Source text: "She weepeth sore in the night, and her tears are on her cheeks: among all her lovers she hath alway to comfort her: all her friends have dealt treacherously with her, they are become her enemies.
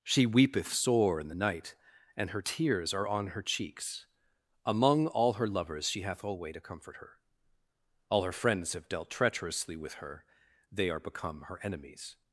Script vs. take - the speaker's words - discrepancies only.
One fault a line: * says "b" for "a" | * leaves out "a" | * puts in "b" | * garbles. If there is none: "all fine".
all fine